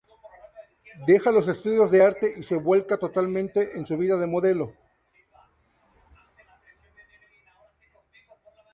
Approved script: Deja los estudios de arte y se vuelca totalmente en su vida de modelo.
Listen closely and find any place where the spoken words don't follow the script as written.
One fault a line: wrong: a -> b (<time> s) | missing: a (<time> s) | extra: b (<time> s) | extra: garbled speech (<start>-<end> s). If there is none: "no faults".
no faults